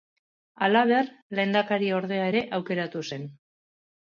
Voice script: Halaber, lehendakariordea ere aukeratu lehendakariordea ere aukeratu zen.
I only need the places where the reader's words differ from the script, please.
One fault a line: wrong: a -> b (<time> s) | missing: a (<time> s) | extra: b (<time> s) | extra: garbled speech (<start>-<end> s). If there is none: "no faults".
missing: lehendakariordea ere aukeratu (3.1 s)